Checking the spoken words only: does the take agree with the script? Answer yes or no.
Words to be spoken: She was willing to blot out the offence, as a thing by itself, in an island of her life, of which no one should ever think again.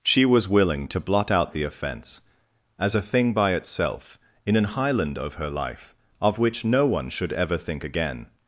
no